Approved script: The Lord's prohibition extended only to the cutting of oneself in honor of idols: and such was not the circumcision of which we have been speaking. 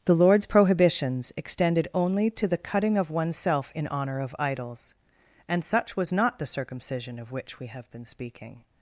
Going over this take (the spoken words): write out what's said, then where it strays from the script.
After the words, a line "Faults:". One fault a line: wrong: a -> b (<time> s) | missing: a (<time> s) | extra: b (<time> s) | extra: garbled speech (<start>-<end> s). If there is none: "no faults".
The Lord's prohibitions extended only to the cutting of oneself in honor of idols: and such was not the circumcision of which we have been speaking.
Faults:
wrong: prohibition -> prohibitions (0.5 s)